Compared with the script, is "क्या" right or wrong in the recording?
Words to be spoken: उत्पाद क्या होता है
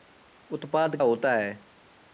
wrong